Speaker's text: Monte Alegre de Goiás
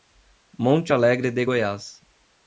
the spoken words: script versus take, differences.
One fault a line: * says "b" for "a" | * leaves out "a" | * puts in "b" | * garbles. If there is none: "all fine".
all fine